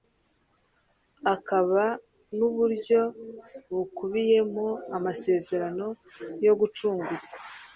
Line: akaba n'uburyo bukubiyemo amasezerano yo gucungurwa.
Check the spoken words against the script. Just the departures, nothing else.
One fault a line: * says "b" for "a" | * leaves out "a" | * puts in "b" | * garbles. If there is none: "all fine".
all fine